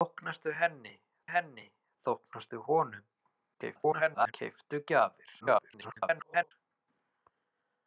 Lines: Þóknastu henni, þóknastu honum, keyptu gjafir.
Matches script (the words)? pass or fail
fail